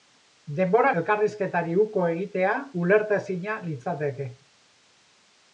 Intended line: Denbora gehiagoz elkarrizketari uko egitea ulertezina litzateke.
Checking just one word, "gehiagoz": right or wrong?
wrong